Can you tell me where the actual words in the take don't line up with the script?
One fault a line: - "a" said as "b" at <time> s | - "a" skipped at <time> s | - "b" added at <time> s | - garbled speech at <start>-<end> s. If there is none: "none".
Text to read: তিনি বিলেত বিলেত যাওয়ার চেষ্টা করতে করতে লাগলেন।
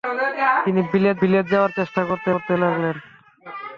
none